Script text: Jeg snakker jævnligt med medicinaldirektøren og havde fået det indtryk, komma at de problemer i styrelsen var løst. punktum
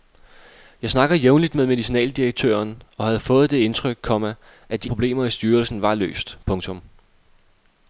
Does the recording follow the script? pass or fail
pass